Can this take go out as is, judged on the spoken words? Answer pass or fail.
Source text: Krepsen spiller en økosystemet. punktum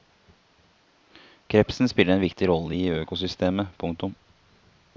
fail